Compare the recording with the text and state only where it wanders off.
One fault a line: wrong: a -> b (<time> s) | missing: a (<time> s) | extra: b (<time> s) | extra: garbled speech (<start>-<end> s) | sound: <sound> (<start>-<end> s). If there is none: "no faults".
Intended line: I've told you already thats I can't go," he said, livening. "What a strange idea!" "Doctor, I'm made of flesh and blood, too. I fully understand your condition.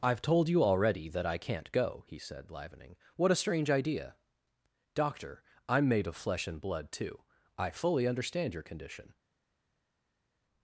wrong: thats -> that (1.1 s)